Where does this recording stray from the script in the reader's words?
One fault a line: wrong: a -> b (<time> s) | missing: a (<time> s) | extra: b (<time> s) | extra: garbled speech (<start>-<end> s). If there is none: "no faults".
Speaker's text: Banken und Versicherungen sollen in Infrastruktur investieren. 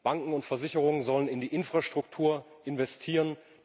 extra: die (1.4 s)